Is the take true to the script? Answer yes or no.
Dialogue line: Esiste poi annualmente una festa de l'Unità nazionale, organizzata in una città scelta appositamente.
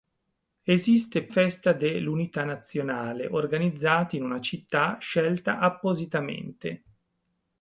no